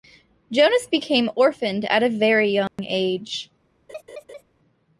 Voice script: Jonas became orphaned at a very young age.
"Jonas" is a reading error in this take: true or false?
false